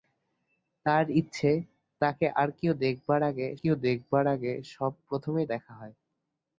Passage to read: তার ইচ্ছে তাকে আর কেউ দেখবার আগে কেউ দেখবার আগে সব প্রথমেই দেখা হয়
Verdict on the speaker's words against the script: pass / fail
pass